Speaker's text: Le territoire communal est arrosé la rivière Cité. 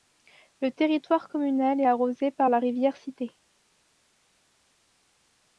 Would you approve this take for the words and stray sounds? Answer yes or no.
no